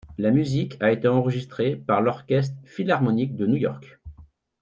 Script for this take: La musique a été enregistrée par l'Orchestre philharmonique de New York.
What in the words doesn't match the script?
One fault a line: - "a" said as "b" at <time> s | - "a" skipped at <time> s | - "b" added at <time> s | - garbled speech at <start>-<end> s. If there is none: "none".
none